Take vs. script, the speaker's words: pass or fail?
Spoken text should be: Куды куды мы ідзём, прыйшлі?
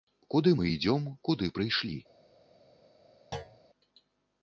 fail